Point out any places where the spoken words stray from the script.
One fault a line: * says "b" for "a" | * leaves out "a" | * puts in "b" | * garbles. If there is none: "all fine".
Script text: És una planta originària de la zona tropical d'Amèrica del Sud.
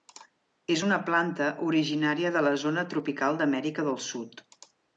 all fine